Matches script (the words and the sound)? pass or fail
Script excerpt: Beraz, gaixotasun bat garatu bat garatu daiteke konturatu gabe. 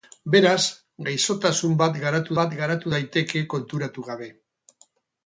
pass